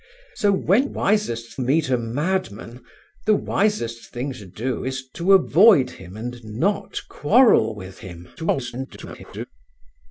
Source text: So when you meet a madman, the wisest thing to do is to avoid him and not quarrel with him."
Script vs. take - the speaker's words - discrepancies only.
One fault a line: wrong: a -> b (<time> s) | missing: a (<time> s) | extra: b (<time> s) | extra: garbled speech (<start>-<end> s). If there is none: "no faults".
wrong: you -> wisest (0.8 s)
extra: garbled speech (8.4-9.4 s)